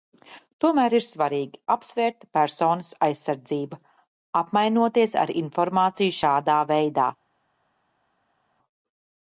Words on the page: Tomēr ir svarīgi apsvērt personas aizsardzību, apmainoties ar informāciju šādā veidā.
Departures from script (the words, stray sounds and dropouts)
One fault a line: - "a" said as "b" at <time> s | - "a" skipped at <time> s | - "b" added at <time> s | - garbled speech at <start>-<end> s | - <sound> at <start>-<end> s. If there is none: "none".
none